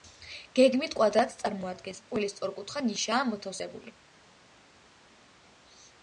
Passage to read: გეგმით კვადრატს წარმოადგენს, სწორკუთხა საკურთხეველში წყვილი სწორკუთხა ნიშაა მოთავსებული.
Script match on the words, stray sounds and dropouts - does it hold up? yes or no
no